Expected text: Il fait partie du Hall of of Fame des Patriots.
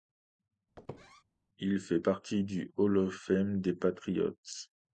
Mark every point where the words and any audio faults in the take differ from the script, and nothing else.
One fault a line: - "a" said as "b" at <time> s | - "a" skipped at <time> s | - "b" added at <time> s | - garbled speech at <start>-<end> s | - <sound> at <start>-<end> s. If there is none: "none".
- squeak at 0.8-1.2 s
- "of" skipped at 3.1 s